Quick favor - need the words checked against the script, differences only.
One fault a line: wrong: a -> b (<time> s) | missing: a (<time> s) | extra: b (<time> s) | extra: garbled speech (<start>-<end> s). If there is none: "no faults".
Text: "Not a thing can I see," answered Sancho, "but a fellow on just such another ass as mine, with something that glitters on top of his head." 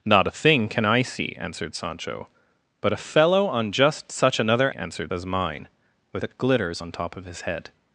wrong: ass -> answered (4.8 s)
missing: something (6.2 s)